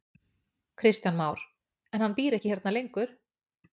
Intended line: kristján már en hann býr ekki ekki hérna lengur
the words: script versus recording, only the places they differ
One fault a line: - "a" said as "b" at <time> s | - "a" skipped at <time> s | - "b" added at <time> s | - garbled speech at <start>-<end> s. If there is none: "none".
- "ekki" skipped at 2.5 s